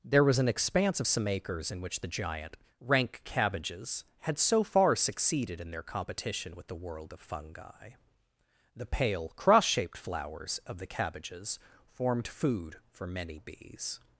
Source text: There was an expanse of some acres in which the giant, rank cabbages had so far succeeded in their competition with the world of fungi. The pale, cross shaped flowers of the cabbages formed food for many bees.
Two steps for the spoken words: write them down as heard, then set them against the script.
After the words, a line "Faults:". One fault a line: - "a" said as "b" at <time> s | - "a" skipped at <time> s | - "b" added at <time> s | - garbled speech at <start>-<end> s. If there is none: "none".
There was an expanse of some acres in which the giant, rank cabbages had so far succeeded in their competition with the world of fungi. The pale, cross shaped flowers of the cabbages formed food for many bees.
Faults:
none